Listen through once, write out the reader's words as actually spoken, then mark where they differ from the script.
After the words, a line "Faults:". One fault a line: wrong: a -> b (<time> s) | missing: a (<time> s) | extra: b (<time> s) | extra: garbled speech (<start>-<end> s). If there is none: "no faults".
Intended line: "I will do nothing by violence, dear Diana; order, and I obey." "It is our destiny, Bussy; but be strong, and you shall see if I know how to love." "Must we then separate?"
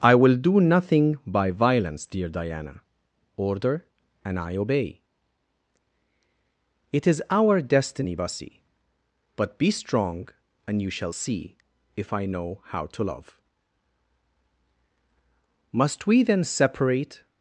"I will do nothing by violence, dear Diana; order, and I obey." "It is our destiny, Bussy; but be strong, and you shall see if I know how to love." "Must we then separate?"
Faults:
no faults